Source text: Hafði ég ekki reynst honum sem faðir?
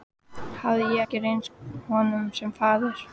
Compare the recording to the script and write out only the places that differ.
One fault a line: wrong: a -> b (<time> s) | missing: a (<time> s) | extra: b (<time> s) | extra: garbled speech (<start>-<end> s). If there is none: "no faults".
no faults